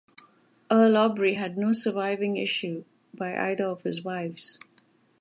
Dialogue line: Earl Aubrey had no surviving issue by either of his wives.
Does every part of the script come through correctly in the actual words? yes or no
yes